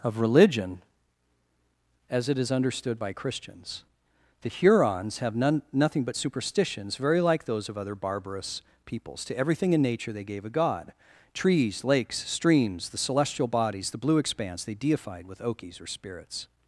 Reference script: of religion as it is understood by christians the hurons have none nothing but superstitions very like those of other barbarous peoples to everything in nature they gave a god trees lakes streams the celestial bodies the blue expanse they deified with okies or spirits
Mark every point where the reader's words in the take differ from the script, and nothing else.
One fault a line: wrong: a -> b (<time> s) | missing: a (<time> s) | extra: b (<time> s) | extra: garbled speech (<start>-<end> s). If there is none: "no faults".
no faults